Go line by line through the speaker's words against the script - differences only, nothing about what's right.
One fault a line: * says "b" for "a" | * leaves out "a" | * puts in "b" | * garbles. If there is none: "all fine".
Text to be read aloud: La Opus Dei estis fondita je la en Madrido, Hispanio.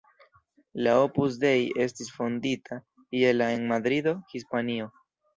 all fine